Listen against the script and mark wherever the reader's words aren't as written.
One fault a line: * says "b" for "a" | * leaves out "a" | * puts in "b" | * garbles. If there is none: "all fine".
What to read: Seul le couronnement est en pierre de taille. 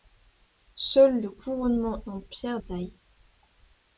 * leaves out "est"
* leaves out "de"